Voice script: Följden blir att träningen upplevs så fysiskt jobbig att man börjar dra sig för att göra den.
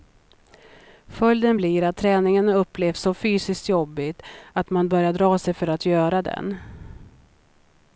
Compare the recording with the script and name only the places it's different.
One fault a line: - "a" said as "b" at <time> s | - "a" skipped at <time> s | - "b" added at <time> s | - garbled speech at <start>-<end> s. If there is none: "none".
none